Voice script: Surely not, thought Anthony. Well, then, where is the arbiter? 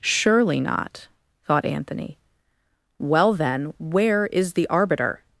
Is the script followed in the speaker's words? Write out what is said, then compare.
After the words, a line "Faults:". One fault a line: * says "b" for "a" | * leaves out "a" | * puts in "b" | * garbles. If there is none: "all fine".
Surely not, thought Anthony. Well, then, where is the arbiter?
Faults:
all fine